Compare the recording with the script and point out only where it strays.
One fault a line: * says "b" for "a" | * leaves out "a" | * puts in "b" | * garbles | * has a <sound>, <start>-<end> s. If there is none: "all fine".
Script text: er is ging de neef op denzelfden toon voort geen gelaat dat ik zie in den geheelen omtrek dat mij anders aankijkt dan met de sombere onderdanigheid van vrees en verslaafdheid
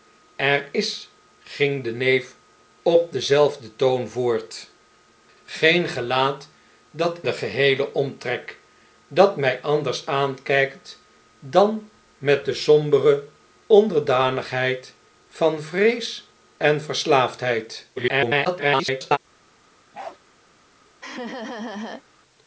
* leaves out "ik zie in"
* garbles
* has a bark, 19.9-20.2 s
* has a laugh, 21.0-22.0 s